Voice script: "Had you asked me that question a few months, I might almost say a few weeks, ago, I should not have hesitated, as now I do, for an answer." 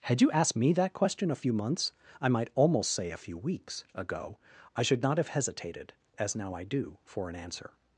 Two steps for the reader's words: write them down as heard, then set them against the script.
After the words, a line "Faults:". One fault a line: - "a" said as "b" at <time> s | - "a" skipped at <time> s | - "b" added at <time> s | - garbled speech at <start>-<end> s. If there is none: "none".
"Had you asked me that question a few months, I might almost say a few weeks, ago, I should not have hesitated, as now I do, for an answer."
Faults:
none